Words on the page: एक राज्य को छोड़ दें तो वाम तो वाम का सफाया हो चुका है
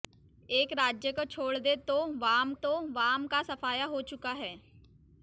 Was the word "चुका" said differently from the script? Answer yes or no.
no